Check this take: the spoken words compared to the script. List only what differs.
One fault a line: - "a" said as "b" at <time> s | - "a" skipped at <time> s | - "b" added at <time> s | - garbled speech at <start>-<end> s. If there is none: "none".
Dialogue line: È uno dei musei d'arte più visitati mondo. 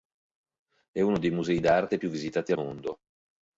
none